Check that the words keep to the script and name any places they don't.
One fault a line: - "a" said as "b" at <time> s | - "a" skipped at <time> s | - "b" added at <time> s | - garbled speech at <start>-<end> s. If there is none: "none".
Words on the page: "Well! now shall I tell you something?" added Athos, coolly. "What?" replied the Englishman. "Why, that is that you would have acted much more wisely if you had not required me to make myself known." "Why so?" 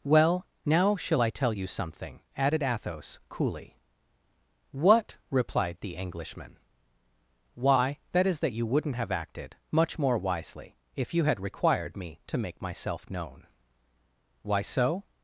- "would" said as "wouldn't" at 8.7 s
- "not" skipped at 11.4 s